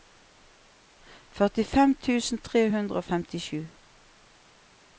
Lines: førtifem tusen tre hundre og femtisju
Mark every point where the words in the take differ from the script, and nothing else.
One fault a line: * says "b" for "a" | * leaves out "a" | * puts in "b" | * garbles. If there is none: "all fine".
all fine